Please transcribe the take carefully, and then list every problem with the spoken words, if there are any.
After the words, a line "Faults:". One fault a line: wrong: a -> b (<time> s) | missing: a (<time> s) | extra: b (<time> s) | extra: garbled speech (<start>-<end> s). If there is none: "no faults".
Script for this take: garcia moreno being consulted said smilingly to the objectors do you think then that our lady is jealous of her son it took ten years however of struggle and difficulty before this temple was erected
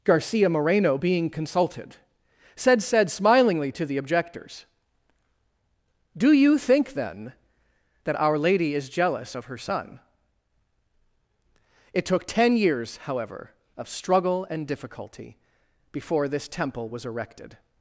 garcia moreno being consulted said said smilingly to the objectors do you think then that our lady is jealous of her son it took ten years however of struggle and difficulty before this temple was erected
Faults:
extra: said (2.8 s)